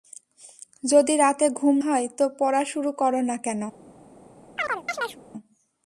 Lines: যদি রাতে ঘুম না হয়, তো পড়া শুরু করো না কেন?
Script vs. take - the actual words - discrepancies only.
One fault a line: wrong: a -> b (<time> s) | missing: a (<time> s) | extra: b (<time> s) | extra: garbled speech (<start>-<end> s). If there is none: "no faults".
missing: না (1.8 s)